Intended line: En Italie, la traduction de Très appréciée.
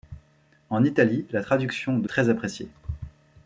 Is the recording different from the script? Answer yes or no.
no